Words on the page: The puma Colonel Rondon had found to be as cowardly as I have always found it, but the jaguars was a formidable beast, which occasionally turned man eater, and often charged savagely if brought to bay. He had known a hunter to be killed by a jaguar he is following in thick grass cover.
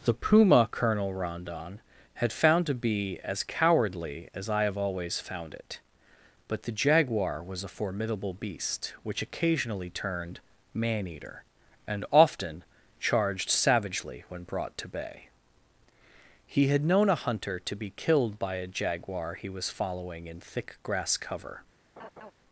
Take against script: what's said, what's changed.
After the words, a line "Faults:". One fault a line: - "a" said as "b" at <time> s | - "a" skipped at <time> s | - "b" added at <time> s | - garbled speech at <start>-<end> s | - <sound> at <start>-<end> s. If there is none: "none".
The puma Colonel Rondon had found to be as cowardly as I have always found it, but the jaguar was a formidable beast, which occasionally turned man eater, and often charged savagely when brought to bay. He had known a hunter to be killed by a jaguar he was following in thick grass cover.
Faults:
- "jaguars" said as "jaguar" at 6.7 s
- "if" said as "when" at 14.3 s
- "is" said as "was" at 19.5 s
- laugh at 22.0-22.3 s